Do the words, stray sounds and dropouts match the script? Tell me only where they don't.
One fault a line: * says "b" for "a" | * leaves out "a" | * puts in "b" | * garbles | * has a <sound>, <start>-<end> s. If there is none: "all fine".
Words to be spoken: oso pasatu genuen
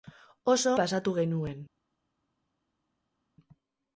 all fine